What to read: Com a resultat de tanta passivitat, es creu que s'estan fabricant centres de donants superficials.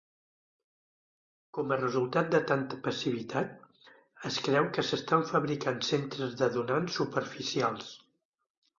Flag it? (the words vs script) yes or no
no